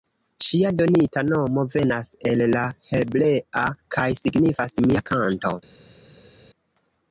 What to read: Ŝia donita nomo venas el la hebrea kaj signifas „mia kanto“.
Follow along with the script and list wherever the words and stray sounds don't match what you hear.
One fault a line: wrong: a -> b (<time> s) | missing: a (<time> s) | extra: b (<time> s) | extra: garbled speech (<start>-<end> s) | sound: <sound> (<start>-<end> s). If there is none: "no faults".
no faults